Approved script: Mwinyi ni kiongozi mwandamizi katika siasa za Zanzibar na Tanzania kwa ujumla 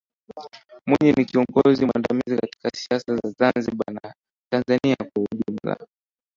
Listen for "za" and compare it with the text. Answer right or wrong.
right